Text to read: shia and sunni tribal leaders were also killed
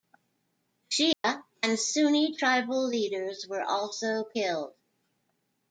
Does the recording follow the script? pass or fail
pass